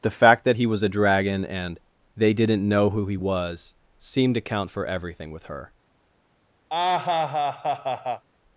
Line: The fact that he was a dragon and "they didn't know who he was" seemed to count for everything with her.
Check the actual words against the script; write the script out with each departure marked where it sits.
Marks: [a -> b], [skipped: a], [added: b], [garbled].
The fact that he was a dragon and "they didn't know who he was" seemed to count for everything with her.